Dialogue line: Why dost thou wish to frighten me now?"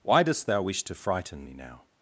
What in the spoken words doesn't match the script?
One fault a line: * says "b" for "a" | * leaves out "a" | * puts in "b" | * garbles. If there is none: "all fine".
all fine